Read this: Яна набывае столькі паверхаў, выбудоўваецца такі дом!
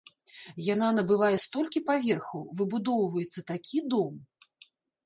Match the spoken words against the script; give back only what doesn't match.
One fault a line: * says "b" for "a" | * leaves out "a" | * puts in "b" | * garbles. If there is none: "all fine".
all fine